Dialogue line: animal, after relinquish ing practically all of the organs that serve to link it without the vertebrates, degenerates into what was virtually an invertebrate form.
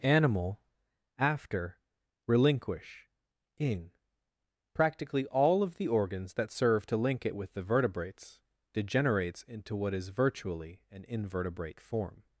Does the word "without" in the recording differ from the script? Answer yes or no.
yes